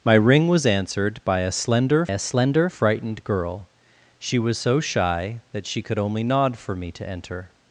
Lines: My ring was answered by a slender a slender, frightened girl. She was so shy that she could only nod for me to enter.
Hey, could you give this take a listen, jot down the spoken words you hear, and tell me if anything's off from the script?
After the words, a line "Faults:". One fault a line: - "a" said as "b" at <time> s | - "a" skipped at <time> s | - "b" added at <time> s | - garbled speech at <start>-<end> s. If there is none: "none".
My ring was answered by a slender a slender, frightened girl. She was so shy that she could only nod for me to enter.
Faults:
none